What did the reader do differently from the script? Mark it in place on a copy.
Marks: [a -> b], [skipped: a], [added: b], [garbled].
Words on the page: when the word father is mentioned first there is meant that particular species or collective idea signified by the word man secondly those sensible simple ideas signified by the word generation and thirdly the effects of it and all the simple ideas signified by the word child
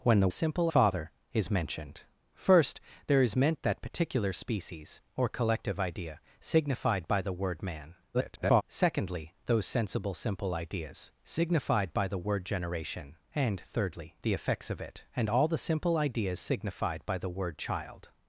when the [word -> simple] father is mentioned first there is meant that particular species or collective idea signified by the word man [garbled] secondly those sensible simple ideas signified by the word generation and thirdly the effects of it and all the simple ideas signified by the word child